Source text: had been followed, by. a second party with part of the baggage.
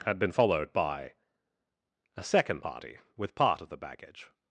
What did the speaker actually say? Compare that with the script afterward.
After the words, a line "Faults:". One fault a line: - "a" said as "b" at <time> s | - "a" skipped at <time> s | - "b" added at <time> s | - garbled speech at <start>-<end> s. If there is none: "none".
had been followed, by. a second party with part of the baggage.
Faults:
none